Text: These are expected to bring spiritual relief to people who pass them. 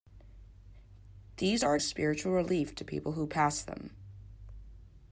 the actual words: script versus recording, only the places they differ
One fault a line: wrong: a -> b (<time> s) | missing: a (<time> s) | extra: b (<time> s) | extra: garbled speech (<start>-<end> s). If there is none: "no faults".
missing: expected to bring (1.8 s)